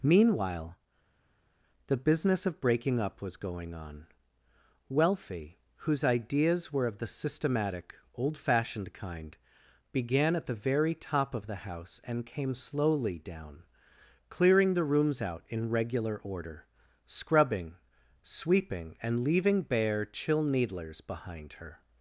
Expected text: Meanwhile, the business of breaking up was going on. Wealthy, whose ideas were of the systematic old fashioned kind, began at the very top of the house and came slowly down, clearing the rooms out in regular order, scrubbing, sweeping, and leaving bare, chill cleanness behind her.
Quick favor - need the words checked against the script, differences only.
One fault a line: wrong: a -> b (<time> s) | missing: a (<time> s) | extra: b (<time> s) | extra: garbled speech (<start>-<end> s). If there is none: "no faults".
wrong: cleanness -> needlers (20.4 s)